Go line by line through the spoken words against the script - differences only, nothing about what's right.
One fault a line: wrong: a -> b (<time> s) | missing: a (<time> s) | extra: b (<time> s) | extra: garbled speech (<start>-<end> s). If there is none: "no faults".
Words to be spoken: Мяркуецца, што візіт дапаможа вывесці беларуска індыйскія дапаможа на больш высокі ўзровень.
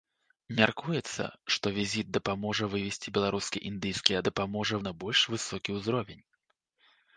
no faults